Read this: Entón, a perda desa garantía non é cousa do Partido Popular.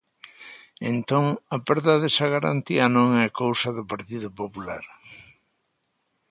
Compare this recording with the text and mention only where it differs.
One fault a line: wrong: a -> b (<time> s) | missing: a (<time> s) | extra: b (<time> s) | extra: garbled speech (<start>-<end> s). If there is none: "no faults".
no faults